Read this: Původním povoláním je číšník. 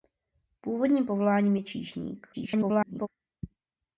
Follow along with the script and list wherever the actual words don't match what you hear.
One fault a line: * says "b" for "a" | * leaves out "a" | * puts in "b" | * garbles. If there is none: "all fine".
* garbles